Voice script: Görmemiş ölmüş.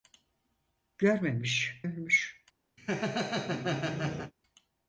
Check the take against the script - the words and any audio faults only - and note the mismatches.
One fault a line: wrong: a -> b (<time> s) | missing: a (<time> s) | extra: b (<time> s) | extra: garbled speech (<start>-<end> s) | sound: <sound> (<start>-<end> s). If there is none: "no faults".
sound: laugh (2.8-4.3 s)